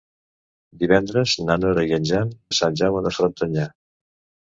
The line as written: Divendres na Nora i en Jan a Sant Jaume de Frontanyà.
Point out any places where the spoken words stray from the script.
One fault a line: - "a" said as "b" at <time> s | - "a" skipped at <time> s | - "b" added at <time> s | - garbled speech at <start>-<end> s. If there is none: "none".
none